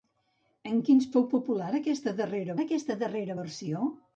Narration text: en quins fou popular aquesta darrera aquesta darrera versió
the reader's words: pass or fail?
pass